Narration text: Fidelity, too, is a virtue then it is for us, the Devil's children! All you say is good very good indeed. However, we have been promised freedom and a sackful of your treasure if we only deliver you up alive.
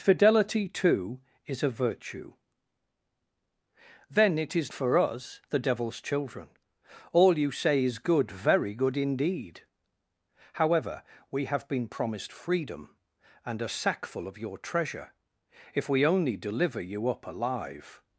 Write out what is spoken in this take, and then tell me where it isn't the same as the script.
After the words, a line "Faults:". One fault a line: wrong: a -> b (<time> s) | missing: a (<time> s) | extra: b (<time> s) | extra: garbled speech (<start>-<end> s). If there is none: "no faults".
Fidelity, too, is a virtue then it is for us, the Devil's children! All you say is good very good indeed. However, we have been promised freedom and a sackful of your treasure if we only deliver you up alive.
Faults:
no faults